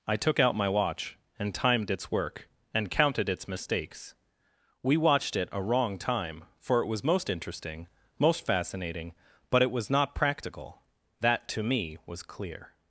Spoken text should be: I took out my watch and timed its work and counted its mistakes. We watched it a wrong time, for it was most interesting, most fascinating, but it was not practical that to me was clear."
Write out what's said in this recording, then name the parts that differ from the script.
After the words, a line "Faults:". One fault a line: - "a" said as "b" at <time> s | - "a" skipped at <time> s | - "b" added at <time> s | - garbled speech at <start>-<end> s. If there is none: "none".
I took out my watch and timed its work and counted its mistakes. We watched it a wrong time, for it was most interesting, most fascinating, but it was not practical that to me was clear."
Faults:
none